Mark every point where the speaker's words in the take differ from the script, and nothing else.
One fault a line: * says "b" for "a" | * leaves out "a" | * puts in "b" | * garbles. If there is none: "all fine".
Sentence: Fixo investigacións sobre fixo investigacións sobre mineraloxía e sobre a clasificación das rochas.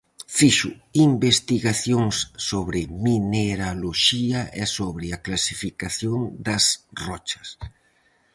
* leaves out "fixo investigacións sobre"